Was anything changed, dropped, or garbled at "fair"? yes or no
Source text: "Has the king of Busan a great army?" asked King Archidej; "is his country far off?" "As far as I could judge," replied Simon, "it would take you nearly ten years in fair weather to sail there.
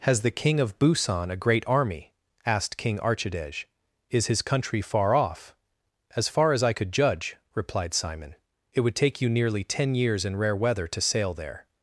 yes